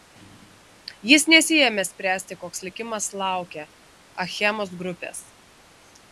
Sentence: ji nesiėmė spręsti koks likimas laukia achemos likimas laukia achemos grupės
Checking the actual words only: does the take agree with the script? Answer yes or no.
no